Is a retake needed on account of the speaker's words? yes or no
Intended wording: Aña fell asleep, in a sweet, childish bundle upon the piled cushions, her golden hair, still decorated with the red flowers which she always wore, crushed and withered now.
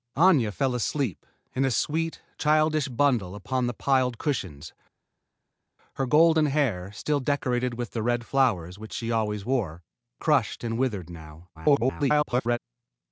yes